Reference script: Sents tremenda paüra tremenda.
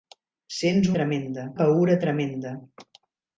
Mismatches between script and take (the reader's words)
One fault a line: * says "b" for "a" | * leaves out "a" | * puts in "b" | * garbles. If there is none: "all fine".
all fine